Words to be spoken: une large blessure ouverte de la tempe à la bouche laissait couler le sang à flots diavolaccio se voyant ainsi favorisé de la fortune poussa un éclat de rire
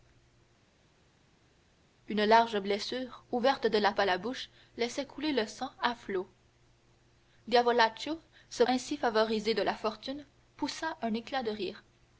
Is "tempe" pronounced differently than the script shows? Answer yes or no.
yes